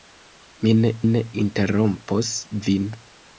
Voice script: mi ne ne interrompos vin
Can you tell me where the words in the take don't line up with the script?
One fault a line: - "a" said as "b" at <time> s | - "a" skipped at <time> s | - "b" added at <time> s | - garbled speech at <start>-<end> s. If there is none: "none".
none